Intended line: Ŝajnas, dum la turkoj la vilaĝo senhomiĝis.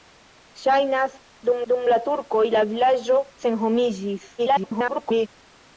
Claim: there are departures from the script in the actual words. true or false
true